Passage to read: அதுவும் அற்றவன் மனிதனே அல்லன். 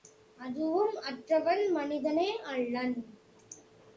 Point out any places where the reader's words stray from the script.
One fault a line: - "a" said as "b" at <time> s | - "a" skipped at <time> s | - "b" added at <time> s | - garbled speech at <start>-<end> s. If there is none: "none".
none